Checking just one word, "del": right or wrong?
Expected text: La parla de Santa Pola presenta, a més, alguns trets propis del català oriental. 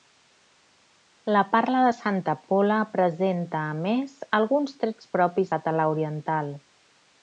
wrong